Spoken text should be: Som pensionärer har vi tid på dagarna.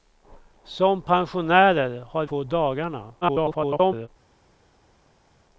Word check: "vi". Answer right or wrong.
wrong